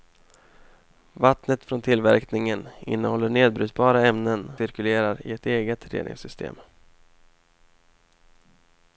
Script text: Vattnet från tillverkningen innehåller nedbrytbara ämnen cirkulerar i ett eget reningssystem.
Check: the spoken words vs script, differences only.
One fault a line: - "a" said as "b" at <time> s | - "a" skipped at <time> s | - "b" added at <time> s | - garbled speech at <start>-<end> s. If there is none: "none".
none